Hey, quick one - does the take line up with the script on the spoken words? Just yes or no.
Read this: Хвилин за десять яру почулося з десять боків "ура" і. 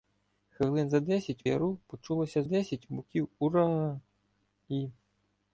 yes